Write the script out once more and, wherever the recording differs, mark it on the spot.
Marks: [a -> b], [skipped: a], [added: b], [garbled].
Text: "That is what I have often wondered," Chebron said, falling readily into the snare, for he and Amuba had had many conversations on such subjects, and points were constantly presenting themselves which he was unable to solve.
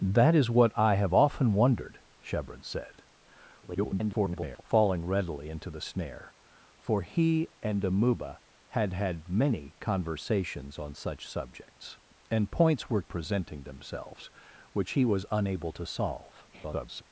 "That is what I have often wondered," Chebron said, [garbled] falling readily into the snare, for he and Amuba had had many conversations on such subjects, and points were [skipped: constantly] presenting themselves which he was unable to solve. [garbled]